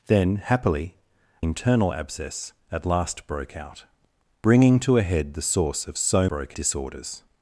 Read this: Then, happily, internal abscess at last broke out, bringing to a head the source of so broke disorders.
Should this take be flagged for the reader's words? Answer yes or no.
no